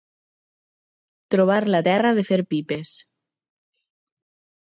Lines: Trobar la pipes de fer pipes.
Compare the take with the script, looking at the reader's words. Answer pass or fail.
fail